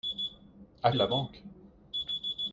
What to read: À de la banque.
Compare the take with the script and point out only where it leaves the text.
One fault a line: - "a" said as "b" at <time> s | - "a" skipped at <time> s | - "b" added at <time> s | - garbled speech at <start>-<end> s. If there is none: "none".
none